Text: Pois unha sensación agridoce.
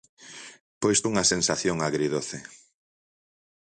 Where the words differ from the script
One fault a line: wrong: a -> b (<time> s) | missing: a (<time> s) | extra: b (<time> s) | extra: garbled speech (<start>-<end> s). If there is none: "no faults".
no faults